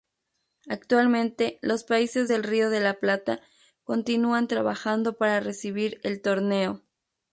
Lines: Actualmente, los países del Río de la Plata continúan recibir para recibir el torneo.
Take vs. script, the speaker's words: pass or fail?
fail